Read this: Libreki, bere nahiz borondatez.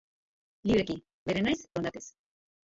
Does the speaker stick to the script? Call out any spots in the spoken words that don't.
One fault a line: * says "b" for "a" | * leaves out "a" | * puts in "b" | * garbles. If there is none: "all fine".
all fine